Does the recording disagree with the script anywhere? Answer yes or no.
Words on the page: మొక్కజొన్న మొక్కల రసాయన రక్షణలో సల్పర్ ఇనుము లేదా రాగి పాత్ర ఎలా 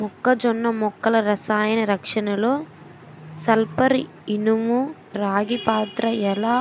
yes